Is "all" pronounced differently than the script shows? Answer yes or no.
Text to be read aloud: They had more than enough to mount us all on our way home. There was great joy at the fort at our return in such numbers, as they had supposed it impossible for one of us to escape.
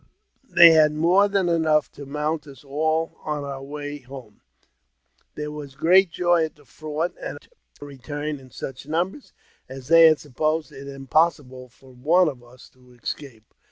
no